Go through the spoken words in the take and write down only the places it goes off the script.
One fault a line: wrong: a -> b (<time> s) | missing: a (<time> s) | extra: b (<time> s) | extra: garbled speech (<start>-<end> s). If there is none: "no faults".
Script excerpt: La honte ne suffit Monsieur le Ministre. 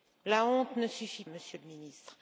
no faults